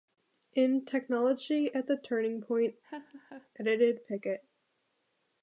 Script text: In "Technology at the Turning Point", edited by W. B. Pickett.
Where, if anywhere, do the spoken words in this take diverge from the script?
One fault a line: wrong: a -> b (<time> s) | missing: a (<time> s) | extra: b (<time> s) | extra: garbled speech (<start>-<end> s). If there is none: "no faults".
missing: by W B (4.1 s)